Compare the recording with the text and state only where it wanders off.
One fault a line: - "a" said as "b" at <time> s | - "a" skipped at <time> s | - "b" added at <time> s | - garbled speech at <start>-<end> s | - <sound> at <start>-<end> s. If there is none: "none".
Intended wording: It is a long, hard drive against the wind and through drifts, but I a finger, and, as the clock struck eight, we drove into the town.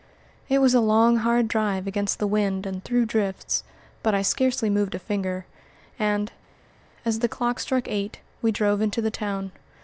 - "is" said as "was" at 0.6 s
- "scarcely moved" added at 4.2 s